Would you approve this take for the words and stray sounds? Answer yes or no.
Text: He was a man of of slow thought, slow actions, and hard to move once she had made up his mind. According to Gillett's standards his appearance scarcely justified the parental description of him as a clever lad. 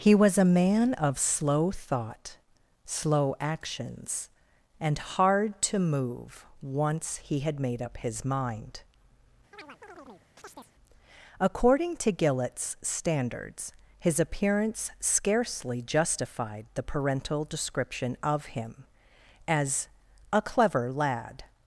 no